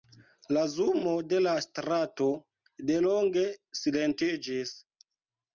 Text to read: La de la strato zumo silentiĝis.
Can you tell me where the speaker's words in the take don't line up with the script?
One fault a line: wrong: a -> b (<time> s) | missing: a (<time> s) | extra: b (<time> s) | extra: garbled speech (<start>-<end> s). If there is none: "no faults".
extra: zumo (0.8 s)
wrong: zumo -> delonge (2.9 s)